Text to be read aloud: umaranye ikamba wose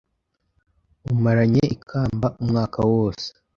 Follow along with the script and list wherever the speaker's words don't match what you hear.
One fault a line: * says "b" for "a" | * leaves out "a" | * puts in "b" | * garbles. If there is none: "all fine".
* puts in "umwaka"